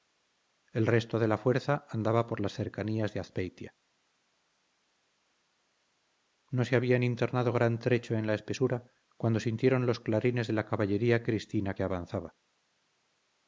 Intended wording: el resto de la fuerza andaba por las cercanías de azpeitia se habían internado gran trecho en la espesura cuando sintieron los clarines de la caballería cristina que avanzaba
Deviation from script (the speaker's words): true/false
true